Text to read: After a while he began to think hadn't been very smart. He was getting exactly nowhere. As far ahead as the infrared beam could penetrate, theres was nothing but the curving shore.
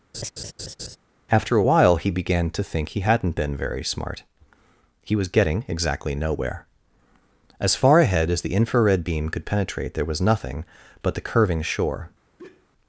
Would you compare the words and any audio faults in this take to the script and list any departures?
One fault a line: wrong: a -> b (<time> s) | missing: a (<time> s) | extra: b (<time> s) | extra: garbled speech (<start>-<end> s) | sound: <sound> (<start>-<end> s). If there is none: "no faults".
sound: laugh (0.1-1.0 s)
extra: he (2.9 s)
wrong: theres -> there (9.9 s)
sound: sigh (12.4-12.7 s)